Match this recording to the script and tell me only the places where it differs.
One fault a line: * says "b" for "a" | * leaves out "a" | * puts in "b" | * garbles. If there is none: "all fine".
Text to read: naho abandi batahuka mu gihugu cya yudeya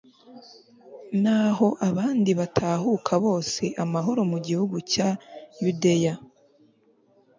* puts in "bose amahoro"